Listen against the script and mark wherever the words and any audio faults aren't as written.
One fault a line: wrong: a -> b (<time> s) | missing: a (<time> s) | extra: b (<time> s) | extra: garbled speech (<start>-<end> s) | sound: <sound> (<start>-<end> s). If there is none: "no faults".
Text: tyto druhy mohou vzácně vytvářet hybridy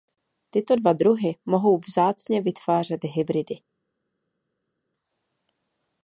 extra: dva (0.7 s)